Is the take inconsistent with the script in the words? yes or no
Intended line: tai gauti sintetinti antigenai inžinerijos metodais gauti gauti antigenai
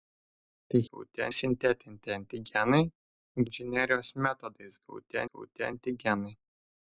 no